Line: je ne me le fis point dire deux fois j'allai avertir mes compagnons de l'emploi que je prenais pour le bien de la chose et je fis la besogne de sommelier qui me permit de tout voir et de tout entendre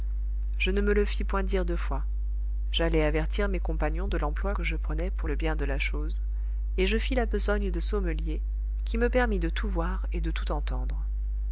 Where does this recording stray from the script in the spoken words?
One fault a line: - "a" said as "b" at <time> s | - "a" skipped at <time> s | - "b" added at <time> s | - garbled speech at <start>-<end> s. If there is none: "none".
none